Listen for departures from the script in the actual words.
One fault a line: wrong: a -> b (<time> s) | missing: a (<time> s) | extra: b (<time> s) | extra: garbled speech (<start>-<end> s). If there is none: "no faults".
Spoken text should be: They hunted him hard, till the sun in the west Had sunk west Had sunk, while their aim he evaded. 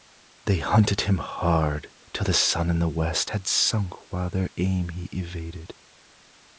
missing: west Had sunk (3.9 s)